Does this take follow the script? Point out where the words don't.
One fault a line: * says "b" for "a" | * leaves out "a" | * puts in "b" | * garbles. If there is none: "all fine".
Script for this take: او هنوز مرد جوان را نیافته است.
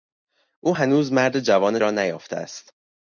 all fine